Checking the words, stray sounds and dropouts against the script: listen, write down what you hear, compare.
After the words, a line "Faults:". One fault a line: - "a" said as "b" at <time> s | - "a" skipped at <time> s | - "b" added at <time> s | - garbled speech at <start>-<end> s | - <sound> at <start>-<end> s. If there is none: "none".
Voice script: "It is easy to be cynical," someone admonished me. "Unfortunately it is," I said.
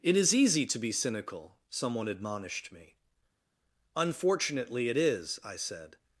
"It is easy to be cynical," someone admonished me. "Unfortunately it is," I said.
Faults:
none